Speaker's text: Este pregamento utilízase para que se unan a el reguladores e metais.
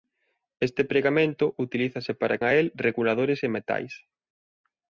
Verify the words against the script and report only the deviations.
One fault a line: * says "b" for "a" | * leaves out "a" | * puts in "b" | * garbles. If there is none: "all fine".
* leaves out "que se unan"